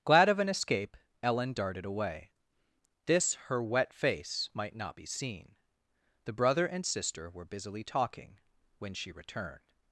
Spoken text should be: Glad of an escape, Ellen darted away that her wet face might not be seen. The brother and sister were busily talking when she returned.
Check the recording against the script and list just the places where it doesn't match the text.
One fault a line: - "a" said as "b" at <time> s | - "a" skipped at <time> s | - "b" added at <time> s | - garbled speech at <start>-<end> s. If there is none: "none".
- "that" said as "this" at 3.0 s